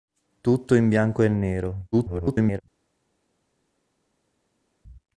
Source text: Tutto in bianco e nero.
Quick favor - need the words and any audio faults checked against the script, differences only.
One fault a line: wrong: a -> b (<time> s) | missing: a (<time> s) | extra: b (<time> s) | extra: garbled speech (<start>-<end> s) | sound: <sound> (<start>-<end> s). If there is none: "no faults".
extra: garbled speech (1.9-2.6 s)